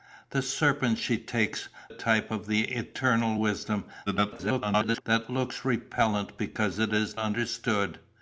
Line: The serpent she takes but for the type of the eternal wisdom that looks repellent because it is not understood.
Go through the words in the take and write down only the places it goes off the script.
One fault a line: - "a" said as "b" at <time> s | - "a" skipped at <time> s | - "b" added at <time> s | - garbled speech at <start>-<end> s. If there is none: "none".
- "but for the" skipped at 1.7 s
- garbled speech at 4.1-5.0 s
- "not" skipped at 7.2 s